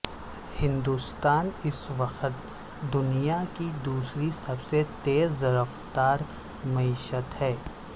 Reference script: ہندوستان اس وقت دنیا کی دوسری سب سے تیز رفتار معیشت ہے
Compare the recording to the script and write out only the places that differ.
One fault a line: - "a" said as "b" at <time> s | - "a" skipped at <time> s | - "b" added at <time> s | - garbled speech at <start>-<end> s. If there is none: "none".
none